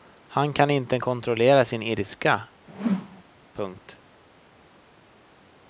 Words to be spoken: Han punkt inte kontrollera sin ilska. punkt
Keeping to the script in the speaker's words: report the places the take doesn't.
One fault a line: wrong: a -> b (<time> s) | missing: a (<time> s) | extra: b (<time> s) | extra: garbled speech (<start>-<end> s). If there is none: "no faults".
wrong: punkt -> kan (0.5 s)